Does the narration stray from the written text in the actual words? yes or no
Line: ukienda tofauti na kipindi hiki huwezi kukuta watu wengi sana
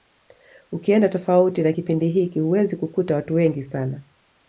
no